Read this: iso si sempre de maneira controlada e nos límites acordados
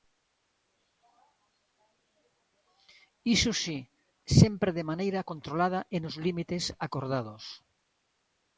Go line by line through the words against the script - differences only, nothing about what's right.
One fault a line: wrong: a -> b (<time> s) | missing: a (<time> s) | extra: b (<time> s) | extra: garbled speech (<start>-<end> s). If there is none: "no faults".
no faults